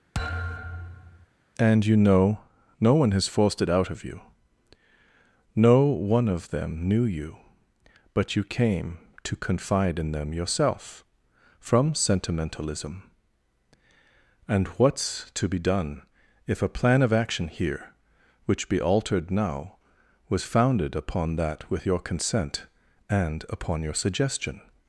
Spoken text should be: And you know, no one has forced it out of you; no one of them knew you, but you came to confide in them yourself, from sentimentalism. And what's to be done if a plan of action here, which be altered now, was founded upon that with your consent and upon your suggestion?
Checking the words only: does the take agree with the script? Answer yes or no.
yes